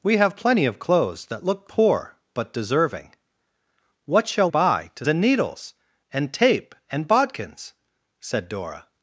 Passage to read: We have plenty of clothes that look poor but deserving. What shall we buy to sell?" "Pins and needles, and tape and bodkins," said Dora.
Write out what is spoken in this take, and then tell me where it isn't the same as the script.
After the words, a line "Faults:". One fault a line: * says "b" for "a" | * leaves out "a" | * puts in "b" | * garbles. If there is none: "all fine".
We have plenty of clothes that look poor but deserving. What shall buy to and needles, and tape and bodkins," said Dora.
Faults:
* leaves out "we"
* leaves out "sell Pins"